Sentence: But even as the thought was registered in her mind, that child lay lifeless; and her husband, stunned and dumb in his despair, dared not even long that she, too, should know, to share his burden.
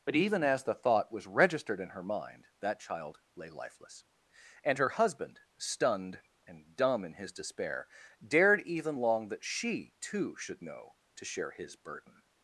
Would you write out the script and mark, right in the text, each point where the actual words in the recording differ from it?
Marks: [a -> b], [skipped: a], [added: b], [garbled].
But even as the thought was registered in her mind, that child lay lifeless; and her husband, stunned and dumb in his despair, dared [skipped: not] even long that she, too, should know, to share his burden.